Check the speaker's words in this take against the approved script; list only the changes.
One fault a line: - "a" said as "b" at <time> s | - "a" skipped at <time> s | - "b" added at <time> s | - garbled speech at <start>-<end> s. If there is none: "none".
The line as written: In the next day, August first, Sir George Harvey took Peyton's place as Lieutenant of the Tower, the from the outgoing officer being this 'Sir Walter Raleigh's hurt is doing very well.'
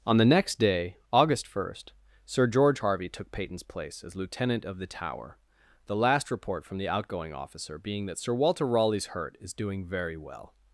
- "In" said as "On" at 0.1 s
- "last report" added at 6.0 s
- "this" said as "that" at 8.1 s